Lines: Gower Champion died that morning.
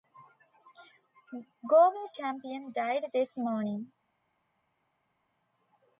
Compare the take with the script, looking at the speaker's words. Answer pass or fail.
fail